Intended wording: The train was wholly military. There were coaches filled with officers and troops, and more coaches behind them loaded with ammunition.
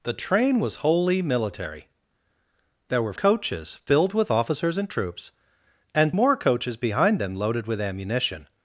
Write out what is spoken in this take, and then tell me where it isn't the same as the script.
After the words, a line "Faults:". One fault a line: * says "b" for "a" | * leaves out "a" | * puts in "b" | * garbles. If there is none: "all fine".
The train was wholly military. There were coaches filled with officers and troops, and more coaches behind them loaded with ammunition.
Faults:
all fine